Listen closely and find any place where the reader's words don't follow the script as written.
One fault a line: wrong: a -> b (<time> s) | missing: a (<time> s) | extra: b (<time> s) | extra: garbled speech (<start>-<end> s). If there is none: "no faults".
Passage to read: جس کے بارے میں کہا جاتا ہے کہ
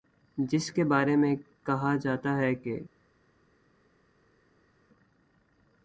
no faults